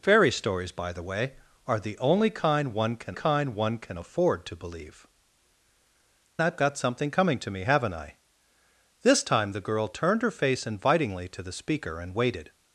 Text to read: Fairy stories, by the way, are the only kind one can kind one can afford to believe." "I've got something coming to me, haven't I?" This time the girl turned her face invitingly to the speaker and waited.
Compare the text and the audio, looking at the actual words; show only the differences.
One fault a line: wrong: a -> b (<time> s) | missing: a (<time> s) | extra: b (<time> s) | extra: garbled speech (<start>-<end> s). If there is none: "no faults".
no faults